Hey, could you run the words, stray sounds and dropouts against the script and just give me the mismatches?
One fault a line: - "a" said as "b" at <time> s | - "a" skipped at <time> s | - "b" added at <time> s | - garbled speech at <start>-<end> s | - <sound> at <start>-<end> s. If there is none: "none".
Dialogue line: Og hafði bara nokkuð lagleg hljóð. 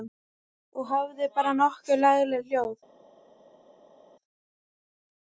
none